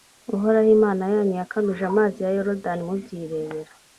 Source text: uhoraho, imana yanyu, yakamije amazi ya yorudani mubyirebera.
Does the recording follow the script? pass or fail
pass